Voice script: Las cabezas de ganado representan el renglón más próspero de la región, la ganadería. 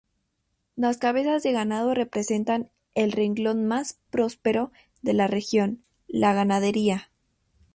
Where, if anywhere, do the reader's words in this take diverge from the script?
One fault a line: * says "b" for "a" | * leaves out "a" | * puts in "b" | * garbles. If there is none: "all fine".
all fine